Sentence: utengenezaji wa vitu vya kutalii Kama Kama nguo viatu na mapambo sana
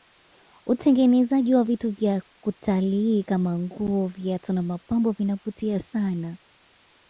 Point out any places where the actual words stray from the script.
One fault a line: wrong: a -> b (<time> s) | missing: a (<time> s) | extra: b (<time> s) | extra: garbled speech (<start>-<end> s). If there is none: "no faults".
missing: Kama (3.6 s)
extra: vinavutia (5.1 s)